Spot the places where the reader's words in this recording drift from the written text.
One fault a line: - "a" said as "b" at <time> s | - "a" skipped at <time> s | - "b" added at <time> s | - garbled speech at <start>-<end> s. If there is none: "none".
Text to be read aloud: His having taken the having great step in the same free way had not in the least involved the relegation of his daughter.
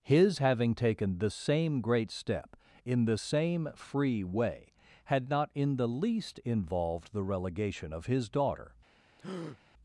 - "having" said as "same" at 1.3 s